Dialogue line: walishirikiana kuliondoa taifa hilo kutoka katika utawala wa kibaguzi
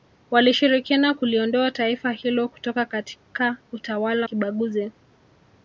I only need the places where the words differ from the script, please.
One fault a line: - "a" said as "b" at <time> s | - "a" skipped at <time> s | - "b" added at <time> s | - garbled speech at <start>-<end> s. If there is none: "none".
- "wa" skipped at 4.3 s